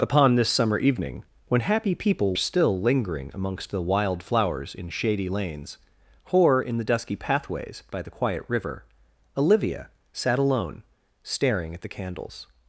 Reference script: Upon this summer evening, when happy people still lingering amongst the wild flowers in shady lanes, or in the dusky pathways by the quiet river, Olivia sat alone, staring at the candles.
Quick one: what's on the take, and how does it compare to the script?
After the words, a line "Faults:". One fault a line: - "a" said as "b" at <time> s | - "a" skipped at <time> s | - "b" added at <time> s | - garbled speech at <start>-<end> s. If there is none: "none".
Upon this summer evening, when happy people still lingering amongst the wild flowers in shady lanes, or in the dusky pathways by the quiet river, Olivia sat alone, staring at the candles.
Faults:
none